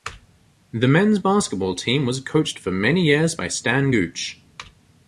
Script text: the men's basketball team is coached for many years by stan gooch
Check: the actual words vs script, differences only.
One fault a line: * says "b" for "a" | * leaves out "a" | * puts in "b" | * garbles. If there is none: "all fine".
* says "was" for "is"